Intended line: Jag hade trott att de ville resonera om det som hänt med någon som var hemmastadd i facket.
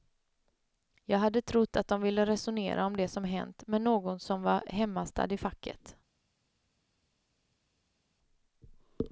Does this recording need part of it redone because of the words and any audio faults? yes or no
no